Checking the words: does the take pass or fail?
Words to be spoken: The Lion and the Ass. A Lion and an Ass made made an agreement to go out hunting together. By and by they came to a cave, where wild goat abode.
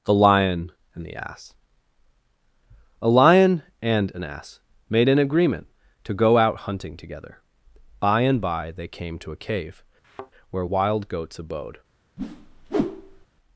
fail